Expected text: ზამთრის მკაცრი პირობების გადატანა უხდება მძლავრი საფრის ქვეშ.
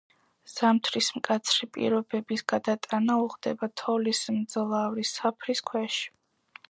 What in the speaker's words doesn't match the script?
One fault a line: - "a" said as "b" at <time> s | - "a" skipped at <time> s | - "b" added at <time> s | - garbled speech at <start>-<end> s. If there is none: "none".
- "თოვლის" added at 3.8 s